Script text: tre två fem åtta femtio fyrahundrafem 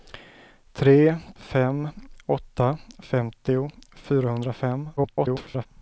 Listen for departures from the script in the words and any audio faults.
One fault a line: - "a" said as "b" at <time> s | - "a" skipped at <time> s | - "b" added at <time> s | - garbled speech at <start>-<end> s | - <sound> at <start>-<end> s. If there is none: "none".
- "två" skipped at 1.2 s
- garbled speech at 5.0-5.7 s